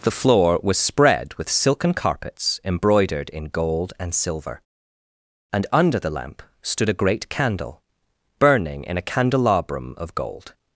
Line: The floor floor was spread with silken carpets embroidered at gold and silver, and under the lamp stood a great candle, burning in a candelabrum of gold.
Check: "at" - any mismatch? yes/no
yes